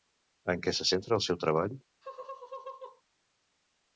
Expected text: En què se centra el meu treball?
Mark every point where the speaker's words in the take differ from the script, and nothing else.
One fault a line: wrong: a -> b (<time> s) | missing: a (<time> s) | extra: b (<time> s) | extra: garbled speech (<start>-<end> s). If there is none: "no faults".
wrong: meu -> seu (1.3 s)